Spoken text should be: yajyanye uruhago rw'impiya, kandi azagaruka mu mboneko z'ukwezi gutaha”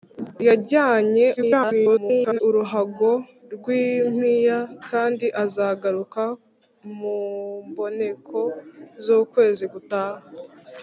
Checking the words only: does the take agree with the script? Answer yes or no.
no